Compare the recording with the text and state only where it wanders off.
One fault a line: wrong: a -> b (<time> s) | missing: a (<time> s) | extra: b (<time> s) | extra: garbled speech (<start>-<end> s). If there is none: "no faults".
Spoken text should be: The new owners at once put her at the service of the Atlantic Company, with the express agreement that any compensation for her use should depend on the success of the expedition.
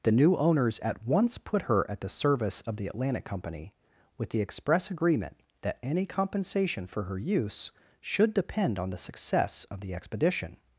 no faults